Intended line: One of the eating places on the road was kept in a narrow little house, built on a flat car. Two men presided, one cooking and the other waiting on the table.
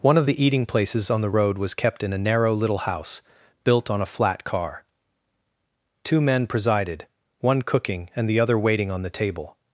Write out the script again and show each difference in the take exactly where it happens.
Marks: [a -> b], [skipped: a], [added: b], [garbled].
One of the eating places on the road was kept in a narrow little house, built on a flat car. Two men presided, one cooking and the other waiting on the table.